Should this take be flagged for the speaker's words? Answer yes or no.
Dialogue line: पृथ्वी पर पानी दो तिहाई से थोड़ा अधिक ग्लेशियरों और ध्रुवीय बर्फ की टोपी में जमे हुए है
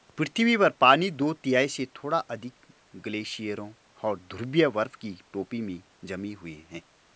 no